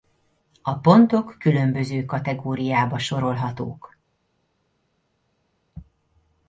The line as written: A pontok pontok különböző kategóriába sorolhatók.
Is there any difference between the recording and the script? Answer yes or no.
yes